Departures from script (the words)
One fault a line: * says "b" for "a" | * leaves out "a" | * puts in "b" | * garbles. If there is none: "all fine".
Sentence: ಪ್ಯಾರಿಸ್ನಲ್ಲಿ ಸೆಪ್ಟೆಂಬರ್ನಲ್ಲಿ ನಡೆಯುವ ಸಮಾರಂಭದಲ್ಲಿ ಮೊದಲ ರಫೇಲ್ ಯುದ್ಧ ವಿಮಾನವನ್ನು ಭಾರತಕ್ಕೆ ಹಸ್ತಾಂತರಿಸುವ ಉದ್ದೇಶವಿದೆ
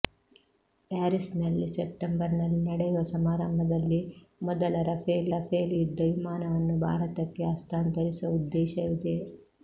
* puts in "ರಫೇಲ್"